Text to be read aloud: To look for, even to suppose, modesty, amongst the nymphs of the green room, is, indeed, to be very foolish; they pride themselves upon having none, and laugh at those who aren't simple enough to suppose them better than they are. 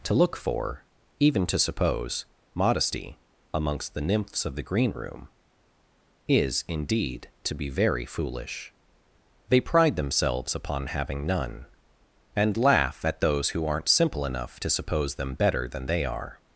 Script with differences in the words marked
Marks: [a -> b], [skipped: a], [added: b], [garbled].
To look for, even to suppose, modesty, amongst the nymphs of the green room, is, indeed, to be very foolish; they pride themselves upon having none, and laugh at those who aren't simple enough to suppose them better than they are.